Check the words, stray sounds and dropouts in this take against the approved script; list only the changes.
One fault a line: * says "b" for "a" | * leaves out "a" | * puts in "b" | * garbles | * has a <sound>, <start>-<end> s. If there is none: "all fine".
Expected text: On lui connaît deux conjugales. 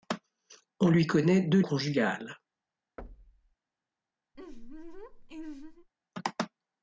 * has a thud, 3.0-3.5 s
* has a laugh, 4.3-5.9 s